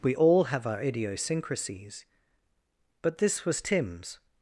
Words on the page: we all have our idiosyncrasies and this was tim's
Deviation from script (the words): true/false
true